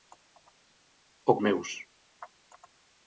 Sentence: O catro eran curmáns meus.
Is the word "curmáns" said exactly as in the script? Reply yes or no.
no